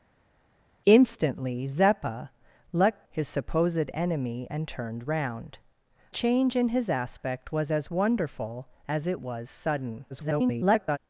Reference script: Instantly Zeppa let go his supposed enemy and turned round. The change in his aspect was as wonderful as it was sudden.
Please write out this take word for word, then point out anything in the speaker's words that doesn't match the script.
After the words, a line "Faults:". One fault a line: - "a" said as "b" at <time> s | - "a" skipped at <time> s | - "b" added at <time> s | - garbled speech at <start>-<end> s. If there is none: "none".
Instantly Zeppa let his supposed enemy and turned round. Change in his aspect was as wonderful as it was sudden. [garbled]
Faults:
- "go" skipped at 3.0 s
- "The" skipped at 5.6 s
- garbled speech at 10.1-11.0 s